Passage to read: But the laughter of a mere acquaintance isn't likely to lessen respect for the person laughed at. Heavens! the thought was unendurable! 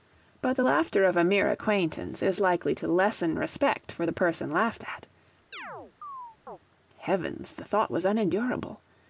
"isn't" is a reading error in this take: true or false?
true